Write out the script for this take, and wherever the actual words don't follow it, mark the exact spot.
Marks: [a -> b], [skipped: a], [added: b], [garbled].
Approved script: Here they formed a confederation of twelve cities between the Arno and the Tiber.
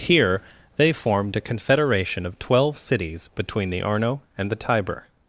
Here they formed a confederation of twelve cities between the Arno and the Tiber.